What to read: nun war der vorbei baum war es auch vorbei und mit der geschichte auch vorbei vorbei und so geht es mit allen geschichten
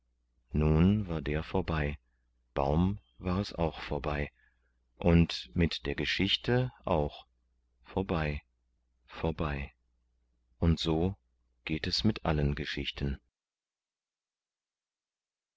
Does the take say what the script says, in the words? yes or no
yes